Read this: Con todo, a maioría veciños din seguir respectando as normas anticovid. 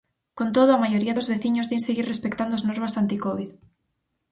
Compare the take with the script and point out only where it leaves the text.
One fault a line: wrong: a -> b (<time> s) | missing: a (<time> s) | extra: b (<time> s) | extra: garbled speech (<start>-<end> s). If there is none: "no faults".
extra: dos (1.2 s)